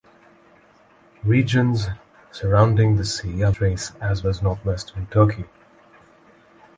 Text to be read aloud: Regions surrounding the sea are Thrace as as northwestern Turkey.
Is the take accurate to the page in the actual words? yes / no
yes